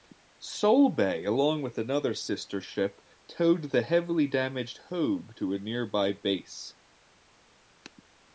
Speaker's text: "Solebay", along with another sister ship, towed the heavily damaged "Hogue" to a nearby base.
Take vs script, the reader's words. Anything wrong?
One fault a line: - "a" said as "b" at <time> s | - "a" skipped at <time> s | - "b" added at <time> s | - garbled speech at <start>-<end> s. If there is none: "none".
none